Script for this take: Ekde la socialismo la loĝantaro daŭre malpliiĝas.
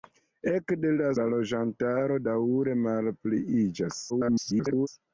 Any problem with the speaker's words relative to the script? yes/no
yes